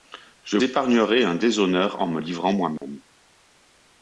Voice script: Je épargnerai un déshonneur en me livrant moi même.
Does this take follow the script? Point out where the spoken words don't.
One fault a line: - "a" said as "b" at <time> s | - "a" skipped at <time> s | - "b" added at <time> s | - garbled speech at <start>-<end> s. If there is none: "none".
none